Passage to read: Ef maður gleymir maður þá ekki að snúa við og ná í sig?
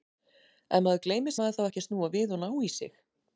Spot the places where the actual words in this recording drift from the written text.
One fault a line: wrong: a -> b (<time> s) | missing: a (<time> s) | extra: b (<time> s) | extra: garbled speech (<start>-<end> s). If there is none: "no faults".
no faults